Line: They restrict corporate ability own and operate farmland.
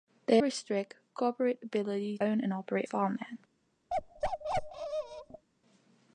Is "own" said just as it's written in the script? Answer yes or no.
yes